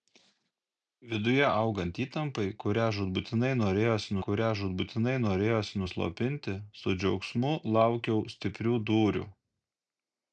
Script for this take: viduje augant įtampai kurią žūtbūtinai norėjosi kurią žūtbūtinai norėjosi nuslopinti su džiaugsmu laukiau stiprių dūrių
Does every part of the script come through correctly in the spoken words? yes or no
yes